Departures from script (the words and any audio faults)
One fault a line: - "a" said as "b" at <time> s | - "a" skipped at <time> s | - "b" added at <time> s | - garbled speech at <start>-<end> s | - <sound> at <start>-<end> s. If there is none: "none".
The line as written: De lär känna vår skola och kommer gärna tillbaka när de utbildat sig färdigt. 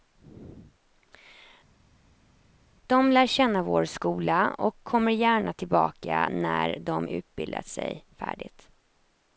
none